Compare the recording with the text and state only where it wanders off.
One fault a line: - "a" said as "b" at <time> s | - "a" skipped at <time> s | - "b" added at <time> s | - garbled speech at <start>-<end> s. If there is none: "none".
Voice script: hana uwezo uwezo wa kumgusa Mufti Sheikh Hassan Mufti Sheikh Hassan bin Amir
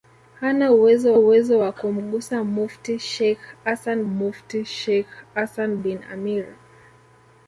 none